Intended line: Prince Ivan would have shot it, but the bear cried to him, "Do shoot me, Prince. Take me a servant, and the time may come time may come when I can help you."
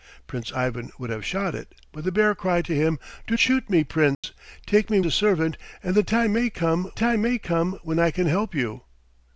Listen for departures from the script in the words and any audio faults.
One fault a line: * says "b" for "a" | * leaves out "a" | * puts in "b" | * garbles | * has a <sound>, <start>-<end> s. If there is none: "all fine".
* has a dropout, 4.1-4.2 s